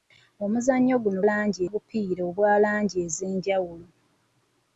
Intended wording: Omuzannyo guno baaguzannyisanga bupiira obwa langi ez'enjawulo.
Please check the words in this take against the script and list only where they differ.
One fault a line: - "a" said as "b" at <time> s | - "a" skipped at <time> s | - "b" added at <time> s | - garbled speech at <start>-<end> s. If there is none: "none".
- "baaguzannyisanga" said as "langi" at 1.3 s